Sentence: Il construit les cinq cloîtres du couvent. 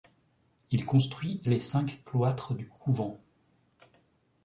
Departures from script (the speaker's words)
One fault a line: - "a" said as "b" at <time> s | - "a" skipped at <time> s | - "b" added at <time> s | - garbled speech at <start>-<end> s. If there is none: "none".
none